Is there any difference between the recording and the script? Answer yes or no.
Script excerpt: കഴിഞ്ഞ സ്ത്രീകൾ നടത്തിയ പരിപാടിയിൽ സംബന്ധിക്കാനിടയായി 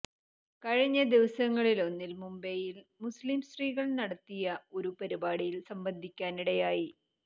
yes